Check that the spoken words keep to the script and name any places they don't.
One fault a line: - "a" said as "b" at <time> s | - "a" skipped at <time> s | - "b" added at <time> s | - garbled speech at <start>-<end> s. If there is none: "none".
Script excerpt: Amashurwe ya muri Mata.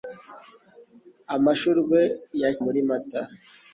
none